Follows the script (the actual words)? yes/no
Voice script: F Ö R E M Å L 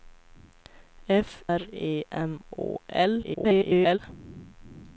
no